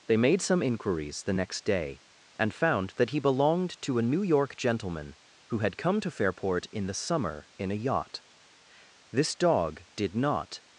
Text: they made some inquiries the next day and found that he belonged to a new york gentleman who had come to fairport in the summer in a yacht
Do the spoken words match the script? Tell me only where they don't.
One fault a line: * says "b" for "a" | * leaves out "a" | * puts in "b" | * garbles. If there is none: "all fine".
* puts in "this dog did not"